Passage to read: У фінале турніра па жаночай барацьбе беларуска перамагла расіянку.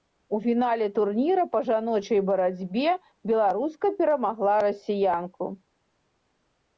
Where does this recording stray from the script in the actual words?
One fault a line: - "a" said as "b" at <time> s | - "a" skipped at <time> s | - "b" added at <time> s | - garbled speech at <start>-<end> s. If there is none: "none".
none